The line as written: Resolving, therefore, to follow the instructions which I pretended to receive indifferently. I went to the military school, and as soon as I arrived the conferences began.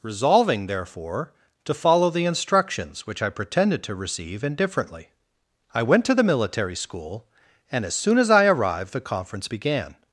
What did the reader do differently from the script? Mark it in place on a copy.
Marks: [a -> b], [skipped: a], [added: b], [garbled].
Resolving, therefore, to follow the instructions which I pretended to receive indifferently. I went to the military school, and as soon as I arrived the [conferences -> conference] began.